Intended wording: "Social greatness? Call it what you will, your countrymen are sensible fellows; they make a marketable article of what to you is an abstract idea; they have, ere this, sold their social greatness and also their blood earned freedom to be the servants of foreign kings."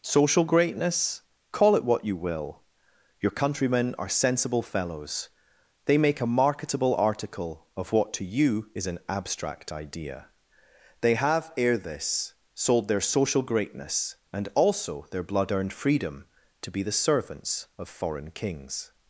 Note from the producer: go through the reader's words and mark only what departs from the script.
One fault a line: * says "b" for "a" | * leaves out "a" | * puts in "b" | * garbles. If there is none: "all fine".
all fine